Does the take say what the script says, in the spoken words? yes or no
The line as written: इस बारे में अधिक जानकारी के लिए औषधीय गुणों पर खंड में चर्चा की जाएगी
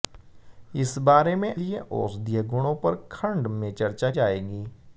no